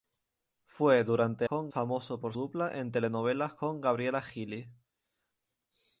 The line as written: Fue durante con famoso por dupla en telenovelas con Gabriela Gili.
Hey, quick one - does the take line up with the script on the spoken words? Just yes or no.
yes